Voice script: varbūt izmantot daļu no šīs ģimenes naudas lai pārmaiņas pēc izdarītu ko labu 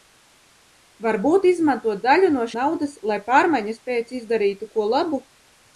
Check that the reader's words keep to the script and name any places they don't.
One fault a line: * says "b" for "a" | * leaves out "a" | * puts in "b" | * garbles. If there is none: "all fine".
* leaves out "šīs ģimenes"